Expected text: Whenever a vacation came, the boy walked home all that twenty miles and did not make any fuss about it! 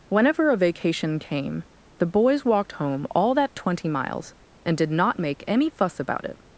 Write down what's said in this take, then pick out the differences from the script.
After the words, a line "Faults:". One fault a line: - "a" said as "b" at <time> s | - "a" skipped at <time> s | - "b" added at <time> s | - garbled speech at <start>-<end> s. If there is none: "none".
Whenever a vacation came, the boys walked home all that twenty miles and did not make any fuss about it!
Faults:
- "boy" said as "boys" at 2.0 s